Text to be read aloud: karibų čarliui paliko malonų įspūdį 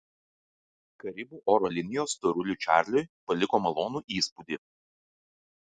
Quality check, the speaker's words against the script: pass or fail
fail